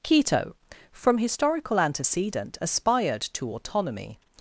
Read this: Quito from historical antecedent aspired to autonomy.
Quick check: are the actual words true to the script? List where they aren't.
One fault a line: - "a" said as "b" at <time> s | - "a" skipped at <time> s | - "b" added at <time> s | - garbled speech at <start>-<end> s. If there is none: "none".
none